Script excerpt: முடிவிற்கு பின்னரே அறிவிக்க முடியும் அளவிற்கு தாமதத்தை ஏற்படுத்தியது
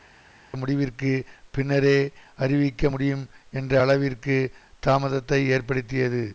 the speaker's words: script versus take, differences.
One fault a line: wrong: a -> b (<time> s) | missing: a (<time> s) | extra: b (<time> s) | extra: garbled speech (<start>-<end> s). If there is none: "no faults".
extra: என்ற (3.5 s)